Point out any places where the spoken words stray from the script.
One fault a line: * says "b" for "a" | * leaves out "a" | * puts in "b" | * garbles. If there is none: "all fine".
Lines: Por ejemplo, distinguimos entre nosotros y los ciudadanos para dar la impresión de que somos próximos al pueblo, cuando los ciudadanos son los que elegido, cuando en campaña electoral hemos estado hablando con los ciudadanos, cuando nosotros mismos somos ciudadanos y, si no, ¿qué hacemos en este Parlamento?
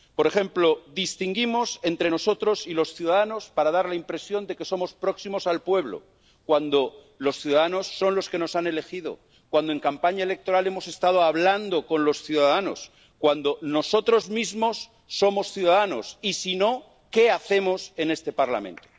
* puts in "nos han"